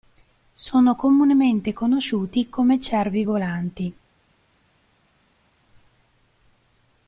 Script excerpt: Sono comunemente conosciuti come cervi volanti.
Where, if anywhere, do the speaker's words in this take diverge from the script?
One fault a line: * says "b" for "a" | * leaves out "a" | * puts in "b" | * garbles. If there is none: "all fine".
all fine